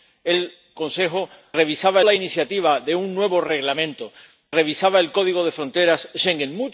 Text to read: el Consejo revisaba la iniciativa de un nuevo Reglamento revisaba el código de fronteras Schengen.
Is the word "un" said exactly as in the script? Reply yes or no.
yes